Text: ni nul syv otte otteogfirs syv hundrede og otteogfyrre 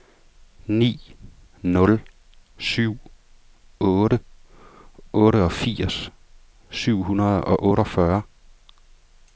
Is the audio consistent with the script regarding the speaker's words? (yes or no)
yes